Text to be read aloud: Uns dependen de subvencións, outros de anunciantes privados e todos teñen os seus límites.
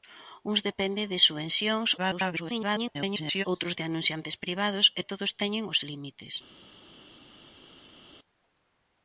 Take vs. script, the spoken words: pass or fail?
fail